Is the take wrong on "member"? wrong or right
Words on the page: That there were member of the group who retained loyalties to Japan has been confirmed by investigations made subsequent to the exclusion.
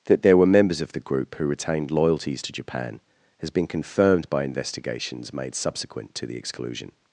wrong